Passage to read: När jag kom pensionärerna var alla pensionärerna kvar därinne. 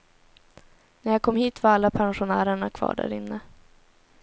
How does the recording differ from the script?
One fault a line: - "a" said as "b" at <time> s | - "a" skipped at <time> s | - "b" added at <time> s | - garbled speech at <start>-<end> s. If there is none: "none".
- "pensionärerna" said as "hit" at 1.4 s